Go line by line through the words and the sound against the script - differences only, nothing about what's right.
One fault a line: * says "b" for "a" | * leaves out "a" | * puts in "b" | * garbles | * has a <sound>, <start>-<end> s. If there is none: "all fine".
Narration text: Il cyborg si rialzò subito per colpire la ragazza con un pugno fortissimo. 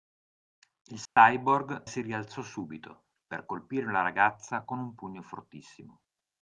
* has a dropout, 1.1-1.2 s